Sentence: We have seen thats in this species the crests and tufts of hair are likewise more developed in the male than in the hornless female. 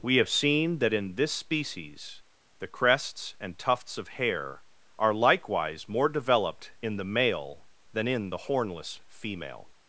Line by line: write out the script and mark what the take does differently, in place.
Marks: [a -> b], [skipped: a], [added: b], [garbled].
We have seen [thats -> that] in this species the crests and tufts of hair are likewise more developed in the male than in the hornless female.